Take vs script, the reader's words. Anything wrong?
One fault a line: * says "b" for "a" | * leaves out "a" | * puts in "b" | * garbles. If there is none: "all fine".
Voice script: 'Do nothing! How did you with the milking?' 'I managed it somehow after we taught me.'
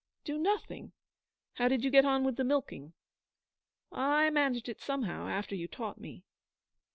* puts in "get on"
* says "you" for "we"